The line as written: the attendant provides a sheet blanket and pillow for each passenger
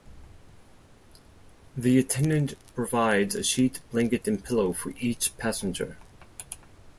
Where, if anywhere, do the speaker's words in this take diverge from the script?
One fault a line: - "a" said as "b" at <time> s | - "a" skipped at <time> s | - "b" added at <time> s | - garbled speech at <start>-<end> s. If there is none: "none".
none